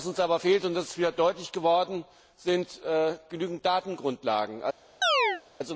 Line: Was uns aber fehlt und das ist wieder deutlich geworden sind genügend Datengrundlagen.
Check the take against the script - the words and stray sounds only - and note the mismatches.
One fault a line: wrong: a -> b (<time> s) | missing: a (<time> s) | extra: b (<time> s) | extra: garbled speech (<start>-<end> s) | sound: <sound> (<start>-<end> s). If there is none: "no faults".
sound: chirp (5.0-5.4 s)